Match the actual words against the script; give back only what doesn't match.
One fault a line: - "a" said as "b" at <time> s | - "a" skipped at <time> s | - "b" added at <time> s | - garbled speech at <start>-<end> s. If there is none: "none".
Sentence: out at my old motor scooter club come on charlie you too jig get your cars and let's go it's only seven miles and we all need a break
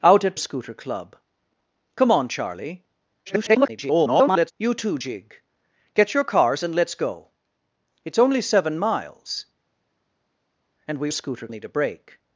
- "my old motor" skipped at 0.4 s
- garbled speech at 3.3-4.5 s
- "all" said as "scooter" at 11.1 s